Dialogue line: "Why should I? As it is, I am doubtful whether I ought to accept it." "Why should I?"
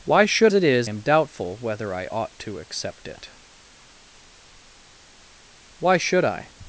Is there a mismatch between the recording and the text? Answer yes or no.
yes